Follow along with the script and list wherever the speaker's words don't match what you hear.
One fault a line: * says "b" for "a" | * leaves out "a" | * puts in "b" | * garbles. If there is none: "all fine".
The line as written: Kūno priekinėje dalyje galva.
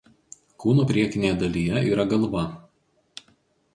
* puts in "yra"